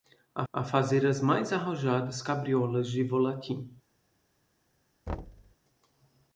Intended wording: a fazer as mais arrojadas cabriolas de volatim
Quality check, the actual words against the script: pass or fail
fail